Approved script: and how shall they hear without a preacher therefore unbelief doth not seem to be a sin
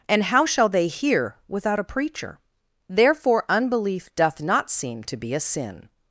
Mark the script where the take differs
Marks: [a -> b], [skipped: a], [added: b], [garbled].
and how shall they hear without a preacher therefore unbelief doth not seem to be a sin